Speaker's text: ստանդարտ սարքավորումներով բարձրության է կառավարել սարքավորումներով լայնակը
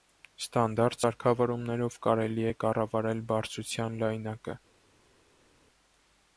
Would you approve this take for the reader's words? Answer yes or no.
no